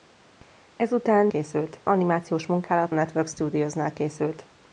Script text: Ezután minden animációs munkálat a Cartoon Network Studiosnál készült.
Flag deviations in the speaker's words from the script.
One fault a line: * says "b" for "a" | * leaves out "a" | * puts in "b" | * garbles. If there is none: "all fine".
* says "készült" for "minden"
* leaves out "a Cartoon"